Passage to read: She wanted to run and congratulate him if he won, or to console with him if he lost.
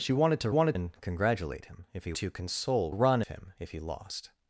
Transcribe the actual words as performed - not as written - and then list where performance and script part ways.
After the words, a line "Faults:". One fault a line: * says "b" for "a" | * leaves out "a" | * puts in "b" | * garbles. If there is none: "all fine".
She wanted to wanted and congratulate him if he to console run him if he lost.
Faults:
* says "wanted" for "run"
* leaves out "won or"
* says "run" for "with"